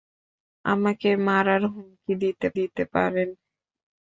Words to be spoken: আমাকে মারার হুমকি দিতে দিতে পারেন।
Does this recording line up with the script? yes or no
yes